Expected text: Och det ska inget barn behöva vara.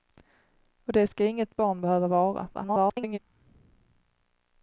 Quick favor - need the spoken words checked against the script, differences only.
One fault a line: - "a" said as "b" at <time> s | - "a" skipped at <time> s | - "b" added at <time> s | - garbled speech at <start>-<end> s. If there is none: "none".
- garbled speech at 2.5-3.2 s